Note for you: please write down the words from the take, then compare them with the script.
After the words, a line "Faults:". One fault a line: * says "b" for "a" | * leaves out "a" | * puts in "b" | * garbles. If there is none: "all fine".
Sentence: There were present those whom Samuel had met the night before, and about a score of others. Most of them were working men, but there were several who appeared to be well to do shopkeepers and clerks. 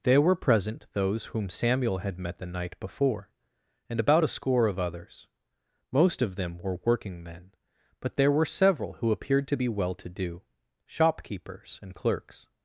There were present those whom Samuel had met the night before, and about a score of others. Most of them were working men, but there were several who appeared to be well to do shopkeepers and clerks.
Faults:
all fine